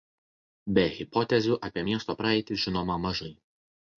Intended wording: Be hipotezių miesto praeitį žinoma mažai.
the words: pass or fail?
fail